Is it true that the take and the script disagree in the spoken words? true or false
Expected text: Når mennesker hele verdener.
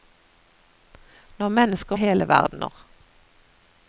false